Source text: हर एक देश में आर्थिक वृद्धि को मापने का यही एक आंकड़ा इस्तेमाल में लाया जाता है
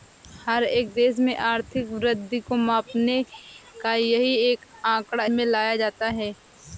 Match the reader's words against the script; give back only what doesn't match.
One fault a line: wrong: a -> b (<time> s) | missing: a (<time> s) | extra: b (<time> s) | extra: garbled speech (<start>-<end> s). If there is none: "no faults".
missing: इस्तेमाल (5.2 s)